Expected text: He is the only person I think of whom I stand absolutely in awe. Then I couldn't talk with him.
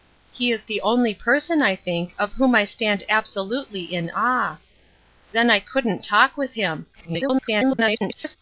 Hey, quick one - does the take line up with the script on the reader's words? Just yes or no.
no